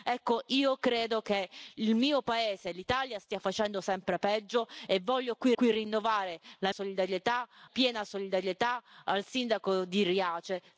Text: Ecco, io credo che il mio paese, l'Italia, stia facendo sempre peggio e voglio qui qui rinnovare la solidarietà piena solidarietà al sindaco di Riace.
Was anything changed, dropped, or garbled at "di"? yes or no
no